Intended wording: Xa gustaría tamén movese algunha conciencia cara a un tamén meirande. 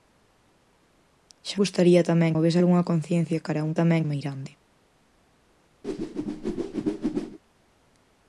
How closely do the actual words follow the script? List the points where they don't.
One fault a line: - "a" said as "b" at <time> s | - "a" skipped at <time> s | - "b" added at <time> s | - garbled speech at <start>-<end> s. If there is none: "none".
none